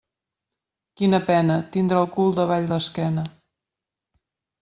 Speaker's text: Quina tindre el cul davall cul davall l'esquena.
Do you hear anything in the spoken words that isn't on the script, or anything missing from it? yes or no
yes